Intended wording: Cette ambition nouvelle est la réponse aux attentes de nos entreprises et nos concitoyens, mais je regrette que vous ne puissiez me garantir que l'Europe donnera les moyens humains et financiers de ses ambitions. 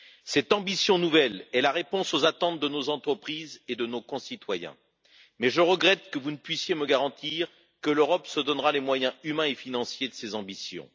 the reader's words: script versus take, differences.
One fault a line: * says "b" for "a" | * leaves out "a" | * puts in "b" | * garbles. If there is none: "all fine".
* puts in "de"
* puts in "se"